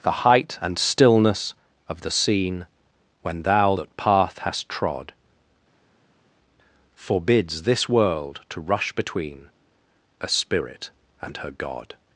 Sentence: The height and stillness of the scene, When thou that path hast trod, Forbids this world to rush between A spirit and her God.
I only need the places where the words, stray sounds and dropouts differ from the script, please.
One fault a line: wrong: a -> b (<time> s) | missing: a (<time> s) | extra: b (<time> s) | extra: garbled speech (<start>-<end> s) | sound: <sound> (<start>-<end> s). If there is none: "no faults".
no faults